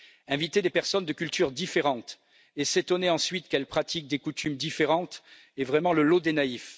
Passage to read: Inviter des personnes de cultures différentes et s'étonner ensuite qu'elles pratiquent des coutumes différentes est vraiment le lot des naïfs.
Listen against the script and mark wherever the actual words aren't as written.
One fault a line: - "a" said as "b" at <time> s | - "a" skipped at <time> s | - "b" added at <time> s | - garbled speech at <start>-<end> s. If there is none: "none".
none